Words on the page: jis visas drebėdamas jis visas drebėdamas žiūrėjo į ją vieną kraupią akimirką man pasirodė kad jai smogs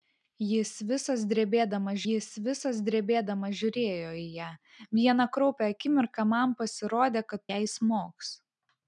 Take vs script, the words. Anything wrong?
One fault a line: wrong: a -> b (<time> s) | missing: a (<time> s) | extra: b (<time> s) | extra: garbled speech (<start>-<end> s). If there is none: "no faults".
no faults